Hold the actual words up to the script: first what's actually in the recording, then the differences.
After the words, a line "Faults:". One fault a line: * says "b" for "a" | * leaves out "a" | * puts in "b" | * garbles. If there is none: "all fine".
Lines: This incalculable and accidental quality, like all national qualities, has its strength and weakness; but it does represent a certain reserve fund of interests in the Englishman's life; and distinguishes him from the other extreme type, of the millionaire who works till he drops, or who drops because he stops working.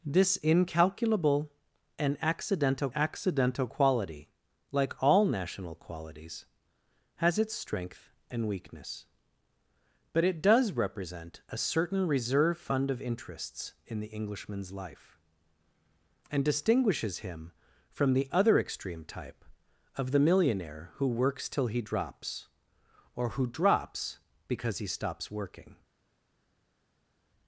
This incalculable and accidental accidental quality, like all national qualities, has its strength and weakness; but it does represent a certain reserve fund of interests in the Englishman's life; and distinguishes him from the other extreme type, of the millionaire who works till he drops, or who drops because he stops working.
Faults:
* puts in "accidental"